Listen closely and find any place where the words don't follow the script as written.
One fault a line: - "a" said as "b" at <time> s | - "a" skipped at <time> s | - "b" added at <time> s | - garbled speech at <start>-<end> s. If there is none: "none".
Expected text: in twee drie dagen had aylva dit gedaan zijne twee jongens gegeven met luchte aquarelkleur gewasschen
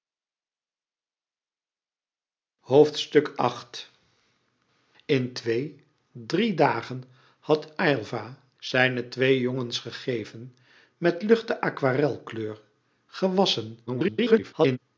- "dit gedaan" skipped at 8.4 s
- garbled speech at 13.9-14.8 s